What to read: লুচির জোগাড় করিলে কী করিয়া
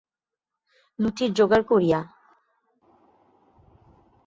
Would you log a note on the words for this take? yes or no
yes